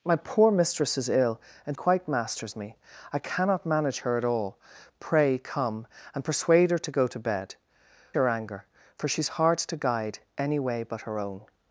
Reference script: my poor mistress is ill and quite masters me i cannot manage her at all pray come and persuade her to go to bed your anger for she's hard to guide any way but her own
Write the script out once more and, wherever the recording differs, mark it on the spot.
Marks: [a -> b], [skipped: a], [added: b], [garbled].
my poor mistress is ill and quite masters me i cannot manage her at all pray come and persuade her to go to bed your anger for she's hard to guide any way but her own